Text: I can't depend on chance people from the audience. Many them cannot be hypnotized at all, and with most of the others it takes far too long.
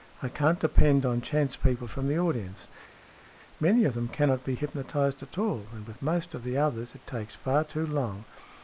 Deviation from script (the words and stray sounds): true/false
true